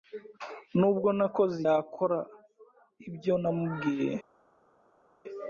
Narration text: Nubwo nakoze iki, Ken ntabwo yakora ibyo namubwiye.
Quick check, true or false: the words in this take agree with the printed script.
false